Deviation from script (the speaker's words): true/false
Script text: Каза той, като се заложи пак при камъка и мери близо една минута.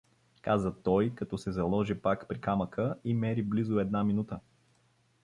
false